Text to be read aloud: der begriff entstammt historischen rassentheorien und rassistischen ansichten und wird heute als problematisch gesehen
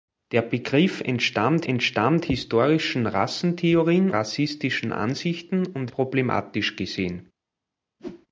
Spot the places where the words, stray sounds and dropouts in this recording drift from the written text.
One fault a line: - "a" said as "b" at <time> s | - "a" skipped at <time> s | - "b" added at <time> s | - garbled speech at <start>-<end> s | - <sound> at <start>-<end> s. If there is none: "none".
- "entstammt" added at 1.6 s
- "und" skipped at 4.1 s
- "wird heute als" skipped at 5.9 s
- whoosh at 8.0-8.3 s